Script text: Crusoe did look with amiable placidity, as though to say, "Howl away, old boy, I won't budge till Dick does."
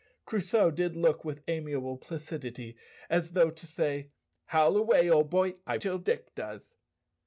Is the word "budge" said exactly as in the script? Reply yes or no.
no